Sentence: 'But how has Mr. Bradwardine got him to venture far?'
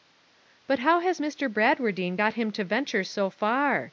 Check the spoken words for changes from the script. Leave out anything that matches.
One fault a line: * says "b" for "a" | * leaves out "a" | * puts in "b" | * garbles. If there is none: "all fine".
* puts in "so"